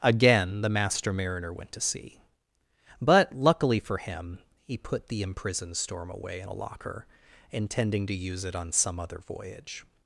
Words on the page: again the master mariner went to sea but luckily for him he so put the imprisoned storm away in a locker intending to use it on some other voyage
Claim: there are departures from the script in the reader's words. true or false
true